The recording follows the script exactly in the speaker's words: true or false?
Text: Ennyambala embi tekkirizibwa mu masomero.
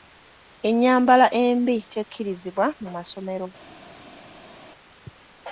true